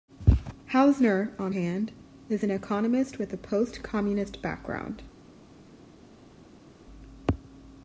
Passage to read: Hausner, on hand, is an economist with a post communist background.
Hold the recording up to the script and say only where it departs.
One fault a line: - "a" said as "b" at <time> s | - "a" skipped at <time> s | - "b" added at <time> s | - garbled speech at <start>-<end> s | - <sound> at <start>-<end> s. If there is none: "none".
none